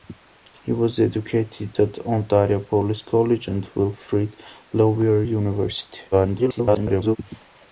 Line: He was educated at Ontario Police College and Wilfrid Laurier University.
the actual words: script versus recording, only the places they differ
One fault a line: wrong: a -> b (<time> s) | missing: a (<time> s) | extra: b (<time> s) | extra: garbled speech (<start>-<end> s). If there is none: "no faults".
extra: garbled speech (6.1-7.2 s)